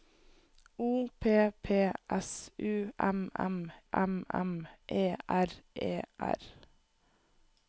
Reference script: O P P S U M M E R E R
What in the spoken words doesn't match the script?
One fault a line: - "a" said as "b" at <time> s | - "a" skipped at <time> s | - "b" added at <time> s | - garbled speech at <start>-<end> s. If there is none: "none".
- "M M" added at 3.9 s